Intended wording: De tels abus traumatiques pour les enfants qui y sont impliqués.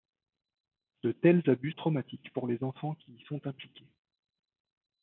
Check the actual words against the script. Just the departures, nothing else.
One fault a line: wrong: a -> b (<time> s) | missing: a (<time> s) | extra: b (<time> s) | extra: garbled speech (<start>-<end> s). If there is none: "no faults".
no faults